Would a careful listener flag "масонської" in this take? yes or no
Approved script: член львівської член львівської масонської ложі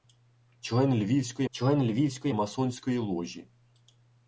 no